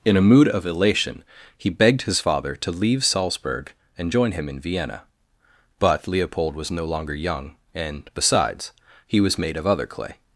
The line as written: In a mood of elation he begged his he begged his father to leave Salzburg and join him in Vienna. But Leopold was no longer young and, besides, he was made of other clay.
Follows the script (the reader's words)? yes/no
no